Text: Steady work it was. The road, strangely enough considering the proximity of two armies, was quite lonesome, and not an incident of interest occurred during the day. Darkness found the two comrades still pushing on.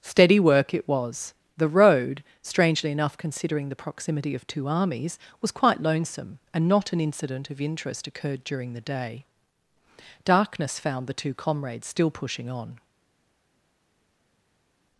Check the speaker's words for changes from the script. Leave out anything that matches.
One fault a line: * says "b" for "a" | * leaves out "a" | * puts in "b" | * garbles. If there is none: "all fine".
all fine